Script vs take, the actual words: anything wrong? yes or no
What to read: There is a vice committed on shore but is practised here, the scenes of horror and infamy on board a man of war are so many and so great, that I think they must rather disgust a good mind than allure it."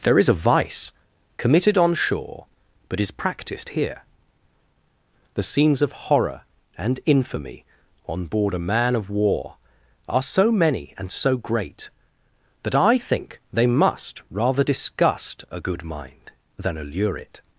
no